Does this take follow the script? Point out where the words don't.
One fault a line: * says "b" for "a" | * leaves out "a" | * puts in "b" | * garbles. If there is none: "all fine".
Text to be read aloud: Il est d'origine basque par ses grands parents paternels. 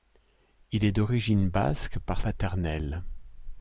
* leaves out "ses grands parents"